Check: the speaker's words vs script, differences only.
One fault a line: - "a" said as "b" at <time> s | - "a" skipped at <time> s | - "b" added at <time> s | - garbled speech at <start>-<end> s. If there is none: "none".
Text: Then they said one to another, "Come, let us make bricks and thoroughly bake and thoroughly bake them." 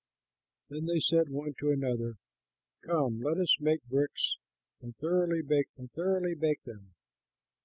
none